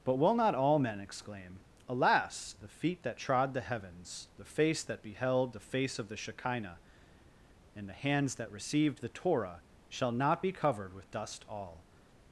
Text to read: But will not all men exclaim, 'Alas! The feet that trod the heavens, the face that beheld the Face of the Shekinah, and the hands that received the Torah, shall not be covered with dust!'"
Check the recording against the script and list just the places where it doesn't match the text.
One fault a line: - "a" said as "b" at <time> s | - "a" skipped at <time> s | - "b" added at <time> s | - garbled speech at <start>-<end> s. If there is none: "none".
- "all" added at 11.5 s